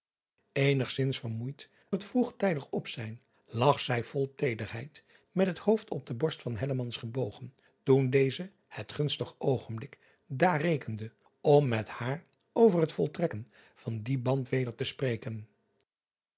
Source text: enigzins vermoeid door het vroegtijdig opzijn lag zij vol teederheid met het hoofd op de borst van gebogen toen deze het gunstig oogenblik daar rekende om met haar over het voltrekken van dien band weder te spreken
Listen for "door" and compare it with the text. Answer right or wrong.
wrong